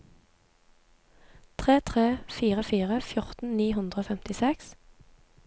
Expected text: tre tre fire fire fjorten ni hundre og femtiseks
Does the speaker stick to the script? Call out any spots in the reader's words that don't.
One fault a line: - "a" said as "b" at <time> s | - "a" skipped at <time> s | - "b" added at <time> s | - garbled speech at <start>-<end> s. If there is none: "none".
none